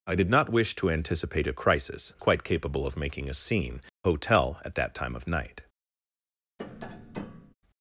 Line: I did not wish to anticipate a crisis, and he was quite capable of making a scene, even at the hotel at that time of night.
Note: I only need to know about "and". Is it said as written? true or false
false